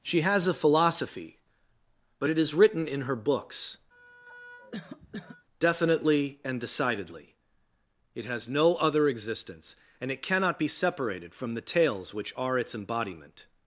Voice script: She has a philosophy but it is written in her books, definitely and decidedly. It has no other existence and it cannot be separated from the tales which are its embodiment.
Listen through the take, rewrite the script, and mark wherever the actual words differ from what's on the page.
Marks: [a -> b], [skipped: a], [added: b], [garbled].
She has a philosophy but it is written in her books, definitely and decidedly. It has no other existence and it cannot be separated from the tales which are its embodiment.